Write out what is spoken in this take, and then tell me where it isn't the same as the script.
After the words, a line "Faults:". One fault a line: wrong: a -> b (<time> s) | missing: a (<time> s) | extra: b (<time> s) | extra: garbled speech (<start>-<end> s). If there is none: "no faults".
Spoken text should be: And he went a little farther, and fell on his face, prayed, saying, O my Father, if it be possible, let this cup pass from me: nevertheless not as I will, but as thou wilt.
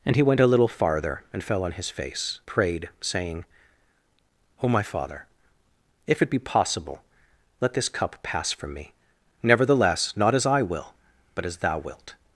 And he went a little farther, and fell on his face, prayed, saying, O my Father, if it be possible, let this cup pass from me: nevertheless not as I will, but as thou wilt.
Faults:
no faults